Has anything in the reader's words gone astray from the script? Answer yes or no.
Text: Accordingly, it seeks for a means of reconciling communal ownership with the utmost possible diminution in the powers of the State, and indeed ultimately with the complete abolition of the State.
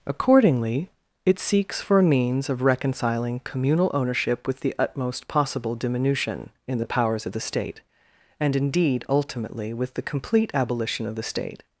no